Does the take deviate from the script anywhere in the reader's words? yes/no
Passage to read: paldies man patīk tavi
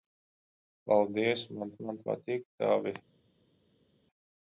yes